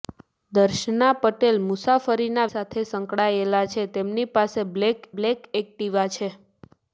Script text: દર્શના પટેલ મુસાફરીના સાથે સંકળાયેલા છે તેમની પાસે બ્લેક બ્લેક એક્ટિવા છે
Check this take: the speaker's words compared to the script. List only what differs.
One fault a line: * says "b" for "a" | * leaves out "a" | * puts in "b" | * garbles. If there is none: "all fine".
all fine